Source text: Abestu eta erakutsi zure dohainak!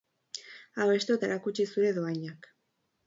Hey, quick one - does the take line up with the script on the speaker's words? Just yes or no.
yes